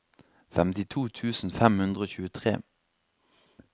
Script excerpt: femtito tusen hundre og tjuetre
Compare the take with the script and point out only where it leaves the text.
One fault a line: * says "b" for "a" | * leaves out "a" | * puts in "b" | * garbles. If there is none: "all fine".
* puts in "fem"